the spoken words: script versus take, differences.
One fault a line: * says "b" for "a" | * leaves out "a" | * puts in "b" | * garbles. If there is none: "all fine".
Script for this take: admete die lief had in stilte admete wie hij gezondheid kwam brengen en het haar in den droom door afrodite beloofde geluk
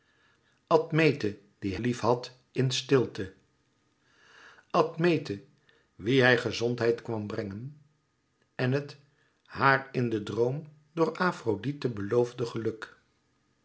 all fine